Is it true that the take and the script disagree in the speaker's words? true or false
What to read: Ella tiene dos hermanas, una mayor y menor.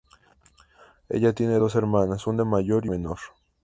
false